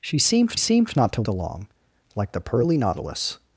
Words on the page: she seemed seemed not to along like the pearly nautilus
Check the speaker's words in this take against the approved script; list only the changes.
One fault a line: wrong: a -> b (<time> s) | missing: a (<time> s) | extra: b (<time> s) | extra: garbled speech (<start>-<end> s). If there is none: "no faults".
no faults